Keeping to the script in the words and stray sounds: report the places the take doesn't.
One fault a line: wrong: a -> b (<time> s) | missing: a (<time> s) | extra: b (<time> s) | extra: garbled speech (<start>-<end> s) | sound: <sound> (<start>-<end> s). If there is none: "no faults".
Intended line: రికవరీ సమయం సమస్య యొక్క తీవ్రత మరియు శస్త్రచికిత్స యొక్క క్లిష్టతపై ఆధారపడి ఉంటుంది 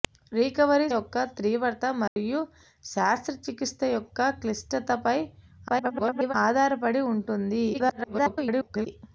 missing: సమయం సమస్య (0.9 s)
sound: dropout (2.1-2.2 s)
extra: garbled speech (5.7-6.3 s)
extra: garbled speech (7.7-8.9 s)